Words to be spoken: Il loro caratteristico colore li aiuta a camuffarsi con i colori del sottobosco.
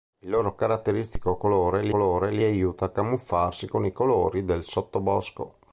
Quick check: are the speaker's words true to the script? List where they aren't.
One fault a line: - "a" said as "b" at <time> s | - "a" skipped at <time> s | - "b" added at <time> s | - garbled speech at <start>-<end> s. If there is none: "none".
- "colore li" added at 1.9 s